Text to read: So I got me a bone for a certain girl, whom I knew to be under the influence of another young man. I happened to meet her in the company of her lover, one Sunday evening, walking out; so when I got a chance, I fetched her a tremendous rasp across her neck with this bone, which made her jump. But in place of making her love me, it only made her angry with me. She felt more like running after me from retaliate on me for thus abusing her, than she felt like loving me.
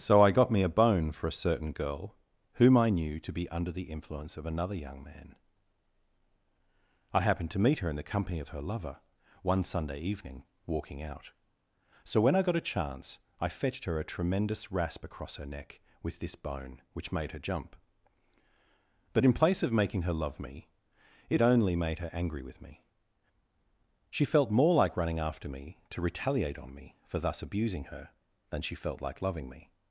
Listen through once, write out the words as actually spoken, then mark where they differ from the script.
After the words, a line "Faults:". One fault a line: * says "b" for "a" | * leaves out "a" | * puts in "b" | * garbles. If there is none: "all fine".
So I got me a bone for a certain girl, whom I knew to be under the influence of another young man. I happened to meet her in the company of her lover, one Sunday evening, walking out; so when I got a chance, I fetched her a tremendous rasp across her neck with this bone, which made her jump. But in place of making her love me, it only made her angry with me. She felt more like running after me to retaliate on me for thus abusing her, than she felt like loving me.
Faults:
* says "to" for "from"